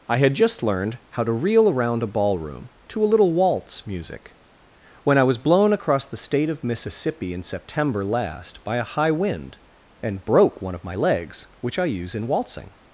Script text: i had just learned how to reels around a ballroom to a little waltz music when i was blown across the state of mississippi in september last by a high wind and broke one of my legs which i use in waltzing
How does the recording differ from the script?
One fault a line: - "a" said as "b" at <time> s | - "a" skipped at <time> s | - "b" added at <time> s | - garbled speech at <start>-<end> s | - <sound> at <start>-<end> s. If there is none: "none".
- "reels" said as "reel" at 1.3 s